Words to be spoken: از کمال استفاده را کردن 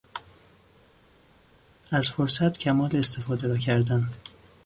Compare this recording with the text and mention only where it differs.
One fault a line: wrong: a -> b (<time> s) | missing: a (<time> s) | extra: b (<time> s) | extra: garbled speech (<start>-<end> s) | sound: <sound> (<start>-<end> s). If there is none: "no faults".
extra: فرصت (2.1 s)